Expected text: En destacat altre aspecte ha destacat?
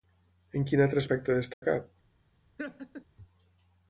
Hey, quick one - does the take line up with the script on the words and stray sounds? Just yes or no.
no